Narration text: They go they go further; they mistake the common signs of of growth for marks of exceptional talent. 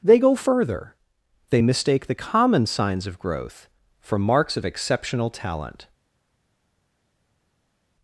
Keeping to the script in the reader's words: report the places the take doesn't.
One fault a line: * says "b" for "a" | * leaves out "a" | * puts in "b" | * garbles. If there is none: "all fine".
* leaves out "they go"
* leaves out "of"